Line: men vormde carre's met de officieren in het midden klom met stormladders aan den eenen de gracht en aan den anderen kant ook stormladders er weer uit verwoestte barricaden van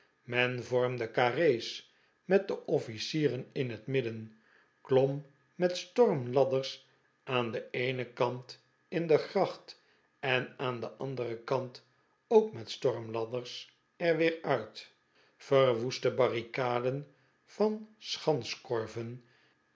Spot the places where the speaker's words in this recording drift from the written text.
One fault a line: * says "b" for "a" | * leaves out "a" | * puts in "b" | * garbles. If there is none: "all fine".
* puts in "kant in"
* puts in "met"